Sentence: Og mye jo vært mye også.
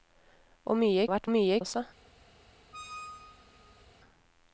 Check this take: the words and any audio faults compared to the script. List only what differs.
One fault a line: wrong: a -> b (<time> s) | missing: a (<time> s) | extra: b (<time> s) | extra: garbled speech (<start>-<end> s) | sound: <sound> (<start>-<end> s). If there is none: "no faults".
sound: squeak (2.7-3.9 s)